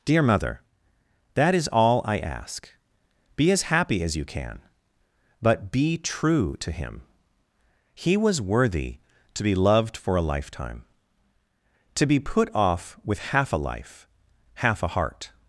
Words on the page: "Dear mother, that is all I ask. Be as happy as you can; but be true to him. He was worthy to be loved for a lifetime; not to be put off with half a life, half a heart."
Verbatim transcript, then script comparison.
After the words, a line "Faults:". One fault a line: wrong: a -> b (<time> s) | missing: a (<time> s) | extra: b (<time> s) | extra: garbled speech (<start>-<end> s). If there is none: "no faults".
"Dear mother, that is all I ask. Be as happy as you can; but be true to him. He was worthy to be loved for a lifetime; to be put off with half a life, half a heart."
Faults:
missing: not (10.8 s)